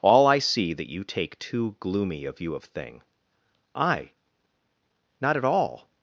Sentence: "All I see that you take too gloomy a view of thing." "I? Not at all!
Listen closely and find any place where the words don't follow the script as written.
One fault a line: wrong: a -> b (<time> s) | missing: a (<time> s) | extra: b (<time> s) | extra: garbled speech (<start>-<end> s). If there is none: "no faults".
no faults